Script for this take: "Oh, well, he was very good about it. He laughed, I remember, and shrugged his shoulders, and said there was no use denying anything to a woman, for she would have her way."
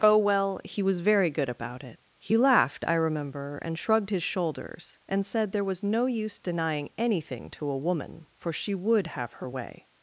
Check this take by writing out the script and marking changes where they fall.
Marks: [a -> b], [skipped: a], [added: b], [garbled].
"Oh, well, he was very good about it. He laughed, I remember, and shrugged his shoulders, and said there was no use denying anything to a woman, for she would have her way."